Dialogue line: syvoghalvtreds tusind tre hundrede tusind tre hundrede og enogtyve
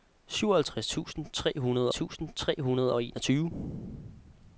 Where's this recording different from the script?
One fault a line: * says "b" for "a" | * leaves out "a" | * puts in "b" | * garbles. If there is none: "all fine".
all fine